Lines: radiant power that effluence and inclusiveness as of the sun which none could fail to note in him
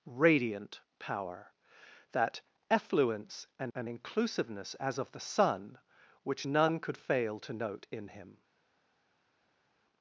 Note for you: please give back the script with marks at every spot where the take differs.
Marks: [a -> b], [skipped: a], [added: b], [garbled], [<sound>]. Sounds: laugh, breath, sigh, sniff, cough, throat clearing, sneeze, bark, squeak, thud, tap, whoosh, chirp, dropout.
radiant power that effluence and [added: and] inclusiveness as of the sun which none could fail to note in him